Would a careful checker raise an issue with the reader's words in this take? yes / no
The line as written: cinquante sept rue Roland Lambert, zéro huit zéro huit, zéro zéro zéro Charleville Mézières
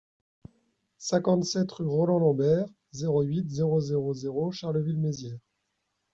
yes